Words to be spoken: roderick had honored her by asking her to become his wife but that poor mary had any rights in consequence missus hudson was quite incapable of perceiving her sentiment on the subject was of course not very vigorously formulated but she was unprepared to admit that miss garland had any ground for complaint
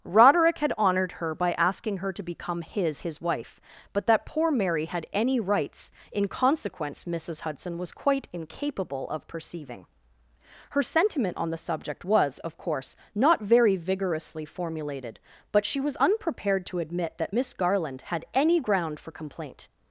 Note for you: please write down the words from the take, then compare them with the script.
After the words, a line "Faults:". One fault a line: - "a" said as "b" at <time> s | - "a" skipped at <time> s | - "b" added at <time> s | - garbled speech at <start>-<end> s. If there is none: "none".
roderick had honored her by asking her to become his his wife but that poor mary had any rights in consequence missus hudson was quite incapable of perceiving her sentiment on the subject was of course not very vigorously formulated but she was unprepared to admit that miss garland had any ground for complaint
Faults:
- "his" added at 3.0 s